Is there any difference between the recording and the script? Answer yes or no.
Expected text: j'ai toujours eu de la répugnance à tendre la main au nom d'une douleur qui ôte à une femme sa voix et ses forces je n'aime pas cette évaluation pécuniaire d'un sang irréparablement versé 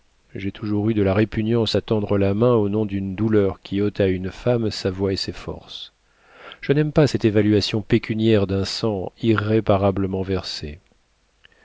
no